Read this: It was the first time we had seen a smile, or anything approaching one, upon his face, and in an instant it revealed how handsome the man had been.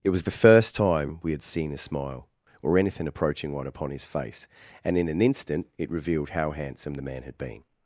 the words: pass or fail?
pass